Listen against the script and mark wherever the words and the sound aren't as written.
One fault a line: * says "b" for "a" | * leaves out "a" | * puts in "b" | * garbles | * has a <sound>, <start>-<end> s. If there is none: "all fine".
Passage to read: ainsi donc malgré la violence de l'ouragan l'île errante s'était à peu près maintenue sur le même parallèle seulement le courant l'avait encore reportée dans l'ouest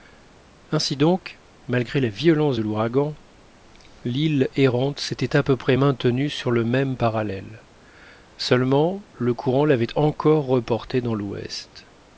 all fine